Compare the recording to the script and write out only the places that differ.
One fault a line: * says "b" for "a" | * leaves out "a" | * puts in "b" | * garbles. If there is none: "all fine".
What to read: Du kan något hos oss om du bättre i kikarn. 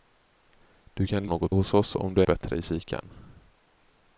all fine